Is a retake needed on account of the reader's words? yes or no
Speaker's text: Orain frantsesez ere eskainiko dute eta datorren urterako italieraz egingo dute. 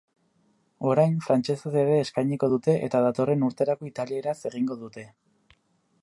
no